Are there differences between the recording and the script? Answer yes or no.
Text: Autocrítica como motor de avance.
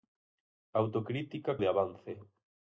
yes